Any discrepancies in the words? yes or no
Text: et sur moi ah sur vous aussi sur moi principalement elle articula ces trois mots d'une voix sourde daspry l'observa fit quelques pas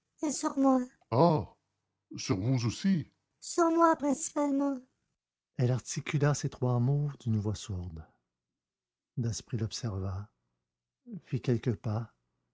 no